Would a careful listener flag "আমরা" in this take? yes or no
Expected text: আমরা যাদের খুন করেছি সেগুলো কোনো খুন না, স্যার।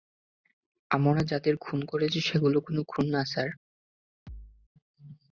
no